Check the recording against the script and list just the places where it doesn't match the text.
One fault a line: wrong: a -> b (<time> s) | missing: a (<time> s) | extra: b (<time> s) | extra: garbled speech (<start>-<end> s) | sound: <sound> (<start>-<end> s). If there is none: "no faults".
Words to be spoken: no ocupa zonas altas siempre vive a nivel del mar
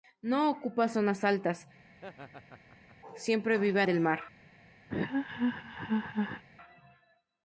sound: laugh (1.9-3.0 s)
missing: nivel (3.9 s)
sound: laugh (4.9-6.4 s)